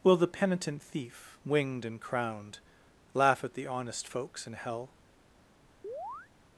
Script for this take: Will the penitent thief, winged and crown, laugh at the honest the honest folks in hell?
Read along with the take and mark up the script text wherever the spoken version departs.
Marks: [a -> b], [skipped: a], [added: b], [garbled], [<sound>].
Will the penitent thief, winged and [crown, -> crowned] laugh at the honest [skipped: the honest] folks in hell? [chirp]